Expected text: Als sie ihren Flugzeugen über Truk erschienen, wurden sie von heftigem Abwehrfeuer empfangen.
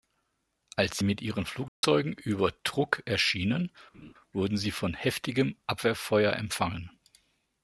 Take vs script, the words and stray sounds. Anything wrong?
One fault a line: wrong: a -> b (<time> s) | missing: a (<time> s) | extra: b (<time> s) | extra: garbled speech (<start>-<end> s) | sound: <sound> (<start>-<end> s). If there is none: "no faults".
extra: mit (1.0 s)
sound: dropout (1.7-1.8 s)
sound: laugh (3.9-4.1 s)